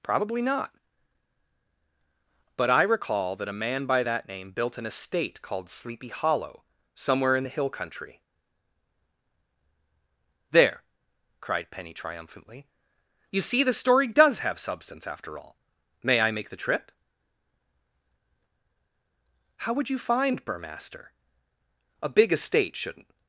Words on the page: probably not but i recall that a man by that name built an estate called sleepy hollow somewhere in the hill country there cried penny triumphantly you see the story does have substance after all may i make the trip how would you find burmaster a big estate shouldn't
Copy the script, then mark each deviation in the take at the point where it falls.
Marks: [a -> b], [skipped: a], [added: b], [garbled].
probably not but i recall that a man by that name built an estate called sleepy hollow somewhere in the hill country there cried penny triumphantly you see the story does have substance after all may i make the trip how would you find burmaster a big estate shouldn't